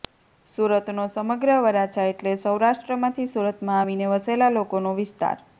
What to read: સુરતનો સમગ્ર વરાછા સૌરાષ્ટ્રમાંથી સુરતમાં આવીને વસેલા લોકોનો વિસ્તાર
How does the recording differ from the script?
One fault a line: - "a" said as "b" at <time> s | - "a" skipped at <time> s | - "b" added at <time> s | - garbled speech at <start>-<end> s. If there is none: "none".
- "એટલે" added at 2.1 s